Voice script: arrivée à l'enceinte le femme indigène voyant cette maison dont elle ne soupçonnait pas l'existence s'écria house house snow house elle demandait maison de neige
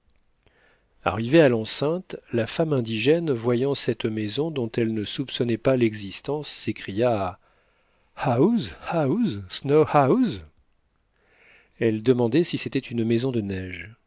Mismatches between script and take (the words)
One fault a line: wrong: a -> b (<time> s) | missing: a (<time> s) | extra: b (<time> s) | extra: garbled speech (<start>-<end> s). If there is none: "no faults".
wrong: le -> la (2.3 s)
extra: si c'était une (12.4 s)